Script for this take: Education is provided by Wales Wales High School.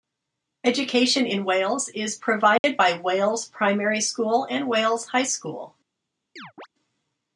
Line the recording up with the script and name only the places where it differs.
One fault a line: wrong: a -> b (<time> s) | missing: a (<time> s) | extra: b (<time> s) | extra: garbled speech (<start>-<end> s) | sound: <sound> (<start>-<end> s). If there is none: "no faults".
extra: in Wales (1.3 s)
sound: dropout (2.6-2.6 s)
extra: Primary School and (3.5 s)
sound: chirp (6.4-6.7 s)